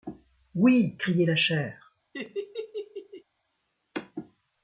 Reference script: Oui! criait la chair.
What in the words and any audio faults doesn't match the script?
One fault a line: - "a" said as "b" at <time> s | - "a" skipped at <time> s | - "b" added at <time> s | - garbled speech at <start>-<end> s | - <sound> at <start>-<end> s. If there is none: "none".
- laugh at 2.1-3.2 s